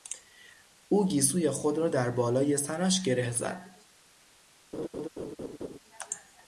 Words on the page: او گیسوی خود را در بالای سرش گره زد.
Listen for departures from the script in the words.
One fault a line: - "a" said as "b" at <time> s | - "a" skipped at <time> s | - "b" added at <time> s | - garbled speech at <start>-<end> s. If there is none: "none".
none